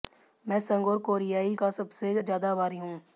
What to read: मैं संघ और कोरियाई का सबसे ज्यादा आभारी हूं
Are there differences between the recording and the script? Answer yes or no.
no